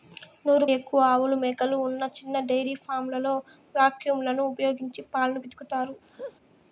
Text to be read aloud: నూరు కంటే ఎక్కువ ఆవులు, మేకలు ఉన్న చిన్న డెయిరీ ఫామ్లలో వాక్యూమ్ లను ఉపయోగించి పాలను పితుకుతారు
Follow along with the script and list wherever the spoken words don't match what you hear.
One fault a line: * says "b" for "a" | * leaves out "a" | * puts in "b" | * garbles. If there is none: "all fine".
* leaves out "కంటే"